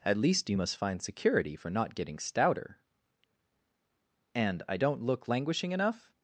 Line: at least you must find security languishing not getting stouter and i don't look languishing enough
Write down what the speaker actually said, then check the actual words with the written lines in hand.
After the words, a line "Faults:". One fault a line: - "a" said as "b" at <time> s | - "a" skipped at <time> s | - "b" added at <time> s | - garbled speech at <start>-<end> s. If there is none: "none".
at least you must find security for not getting stouter and i don't look languishing enough
Faults:
- "languishing" said as "for" at 1.5 s